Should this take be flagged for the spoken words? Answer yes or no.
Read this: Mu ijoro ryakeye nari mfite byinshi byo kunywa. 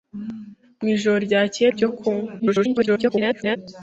yes